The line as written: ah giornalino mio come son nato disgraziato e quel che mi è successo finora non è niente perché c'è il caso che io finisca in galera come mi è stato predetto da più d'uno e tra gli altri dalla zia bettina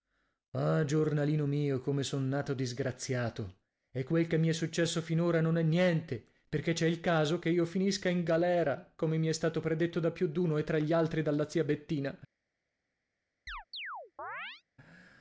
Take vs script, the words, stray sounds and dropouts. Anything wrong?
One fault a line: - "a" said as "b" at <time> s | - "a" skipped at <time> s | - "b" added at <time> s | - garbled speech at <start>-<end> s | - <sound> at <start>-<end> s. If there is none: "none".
- chirp at 13.5-14.6 s